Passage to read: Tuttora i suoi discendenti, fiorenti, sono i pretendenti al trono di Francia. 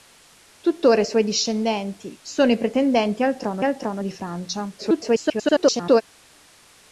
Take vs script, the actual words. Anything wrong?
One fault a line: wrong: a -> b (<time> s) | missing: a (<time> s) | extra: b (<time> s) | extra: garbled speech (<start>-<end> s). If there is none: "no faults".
missing: fiorenti (2.2 s)
extra: al trono (3.6 s)
extra: garbled speech (4.8-6.0 s)